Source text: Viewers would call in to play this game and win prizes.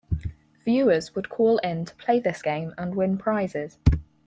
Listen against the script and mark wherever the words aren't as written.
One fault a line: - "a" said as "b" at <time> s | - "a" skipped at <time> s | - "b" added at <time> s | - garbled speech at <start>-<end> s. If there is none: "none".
none